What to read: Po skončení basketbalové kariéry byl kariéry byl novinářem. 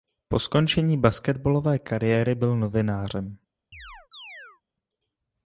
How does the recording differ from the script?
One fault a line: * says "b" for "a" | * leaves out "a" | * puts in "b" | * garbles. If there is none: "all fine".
* leaves out "kariéry byl"